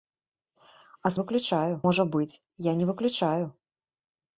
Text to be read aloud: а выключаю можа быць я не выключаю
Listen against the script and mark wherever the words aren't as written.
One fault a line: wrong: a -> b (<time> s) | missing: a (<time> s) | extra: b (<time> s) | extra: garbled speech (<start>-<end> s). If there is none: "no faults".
no faults